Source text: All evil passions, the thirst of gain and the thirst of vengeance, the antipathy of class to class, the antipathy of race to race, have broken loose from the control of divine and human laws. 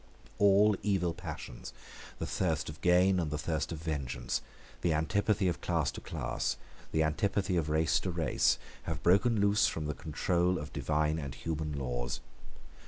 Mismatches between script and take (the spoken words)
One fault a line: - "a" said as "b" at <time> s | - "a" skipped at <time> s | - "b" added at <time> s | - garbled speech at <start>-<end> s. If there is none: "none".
none